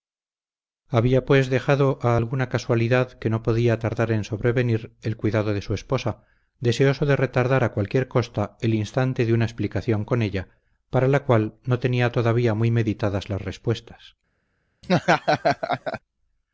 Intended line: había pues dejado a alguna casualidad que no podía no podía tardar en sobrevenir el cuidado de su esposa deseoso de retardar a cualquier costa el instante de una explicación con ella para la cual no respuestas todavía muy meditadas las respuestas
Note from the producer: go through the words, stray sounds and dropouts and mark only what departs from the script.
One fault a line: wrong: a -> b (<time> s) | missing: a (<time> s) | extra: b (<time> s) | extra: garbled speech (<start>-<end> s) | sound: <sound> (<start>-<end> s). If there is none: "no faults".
missing: no podía (3.8 s)
wrong: respuestas -> tenía (11.8 s)
sound: laugh (14.8-16.0 s)